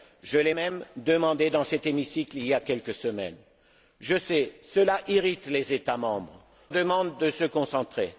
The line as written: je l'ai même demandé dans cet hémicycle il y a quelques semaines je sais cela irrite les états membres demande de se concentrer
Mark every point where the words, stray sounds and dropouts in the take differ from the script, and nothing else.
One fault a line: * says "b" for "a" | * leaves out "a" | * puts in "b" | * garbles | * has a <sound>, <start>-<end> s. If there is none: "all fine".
all fine